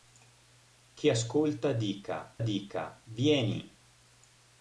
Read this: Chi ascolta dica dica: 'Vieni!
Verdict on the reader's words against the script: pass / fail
pass